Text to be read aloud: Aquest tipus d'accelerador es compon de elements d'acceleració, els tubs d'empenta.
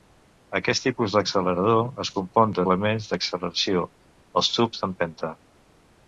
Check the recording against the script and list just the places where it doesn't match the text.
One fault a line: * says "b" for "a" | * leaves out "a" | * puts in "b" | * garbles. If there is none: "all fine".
all fine